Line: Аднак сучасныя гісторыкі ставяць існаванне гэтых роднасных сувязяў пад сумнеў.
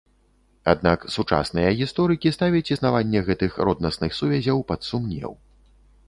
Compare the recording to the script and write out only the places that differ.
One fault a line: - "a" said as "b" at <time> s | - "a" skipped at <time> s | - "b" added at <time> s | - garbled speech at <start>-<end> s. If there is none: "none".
none